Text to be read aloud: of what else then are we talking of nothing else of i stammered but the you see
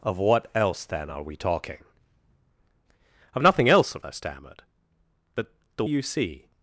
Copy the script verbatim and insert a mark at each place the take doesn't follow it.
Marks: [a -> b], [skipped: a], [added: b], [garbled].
of what else then are we talking of nothing else of i stammered but the you see